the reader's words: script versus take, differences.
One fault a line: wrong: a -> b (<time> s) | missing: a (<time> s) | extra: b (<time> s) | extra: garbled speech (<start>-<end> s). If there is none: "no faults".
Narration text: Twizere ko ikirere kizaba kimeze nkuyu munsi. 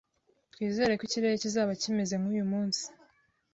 no faults